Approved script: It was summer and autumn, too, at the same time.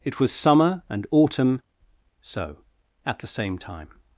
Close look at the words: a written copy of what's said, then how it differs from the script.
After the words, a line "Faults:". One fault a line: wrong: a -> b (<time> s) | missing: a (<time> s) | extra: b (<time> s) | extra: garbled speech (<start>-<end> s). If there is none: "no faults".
It was summer and autumn, so, at the same time.
Faults:
wrong: too -> so (2.2 s)